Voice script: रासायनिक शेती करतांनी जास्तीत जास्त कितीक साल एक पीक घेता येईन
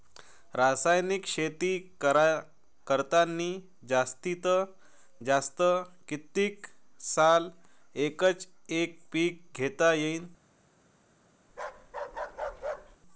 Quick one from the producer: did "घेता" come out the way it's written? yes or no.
yes